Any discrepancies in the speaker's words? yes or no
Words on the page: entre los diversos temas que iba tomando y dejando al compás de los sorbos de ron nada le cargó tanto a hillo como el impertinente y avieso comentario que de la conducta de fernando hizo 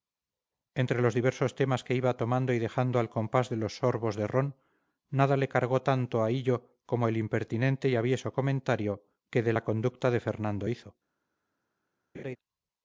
no